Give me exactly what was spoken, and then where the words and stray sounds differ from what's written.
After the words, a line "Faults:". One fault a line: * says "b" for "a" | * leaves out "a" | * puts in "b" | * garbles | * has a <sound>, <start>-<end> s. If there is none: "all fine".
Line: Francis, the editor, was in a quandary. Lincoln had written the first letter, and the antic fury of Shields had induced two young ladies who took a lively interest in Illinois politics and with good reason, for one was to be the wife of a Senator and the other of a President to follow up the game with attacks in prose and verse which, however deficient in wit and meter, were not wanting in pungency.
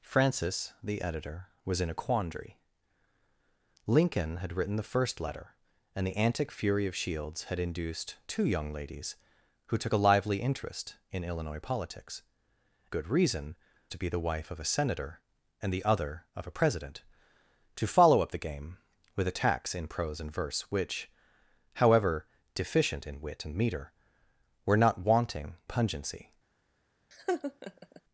Francis, the editor, was in a quandary. Lincoln had written the first letter, and the antic fury of Shields had induced two young ladies who took a lively interest in Illinois politics good reason, to be the wife of a Senator and the other of a President to follow up the game with attacks in prose and verse which, however deficient in wit and meter, were not wanting pungency.
Faults:
* leaves out "and with"
* leaves out "for one was"
* leaves out "in"
* has a laugh, 27.1-28.0 s